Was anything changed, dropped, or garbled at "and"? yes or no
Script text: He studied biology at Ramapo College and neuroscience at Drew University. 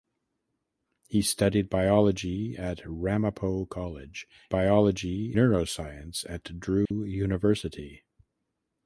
yes